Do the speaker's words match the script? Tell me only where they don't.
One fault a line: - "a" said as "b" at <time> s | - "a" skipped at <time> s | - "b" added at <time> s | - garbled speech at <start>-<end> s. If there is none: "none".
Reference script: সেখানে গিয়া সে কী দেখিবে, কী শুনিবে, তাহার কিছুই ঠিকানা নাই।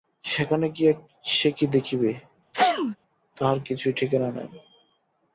- "কী শুনিবে" skipped at 2.1 s